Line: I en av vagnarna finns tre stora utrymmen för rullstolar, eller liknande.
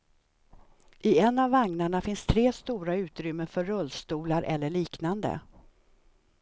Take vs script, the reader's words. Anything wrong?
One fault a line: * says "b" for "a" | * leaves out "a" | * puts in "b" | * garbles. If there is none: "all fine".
all fine